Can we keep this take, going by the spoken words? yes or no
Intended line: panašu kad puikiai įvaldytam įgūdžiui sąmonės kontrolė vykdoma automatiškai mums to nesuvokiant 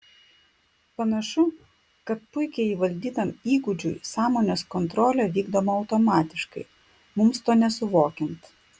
yes